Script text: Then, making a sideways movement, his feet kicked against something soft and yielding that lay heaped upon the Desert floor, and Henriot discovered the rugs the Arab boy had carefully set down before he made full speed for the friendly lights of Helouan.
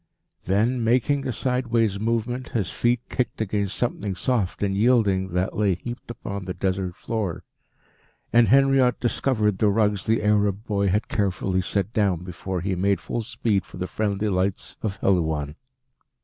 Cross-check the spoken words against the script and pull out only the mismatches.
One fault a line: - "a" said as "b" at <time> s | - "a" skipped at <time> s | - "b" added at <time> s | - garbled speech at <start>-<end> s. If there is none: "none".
none